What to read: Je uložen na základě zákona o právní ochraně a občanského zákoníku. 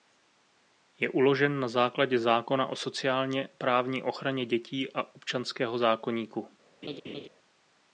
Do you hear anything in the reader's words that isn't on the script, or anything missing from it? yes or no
yes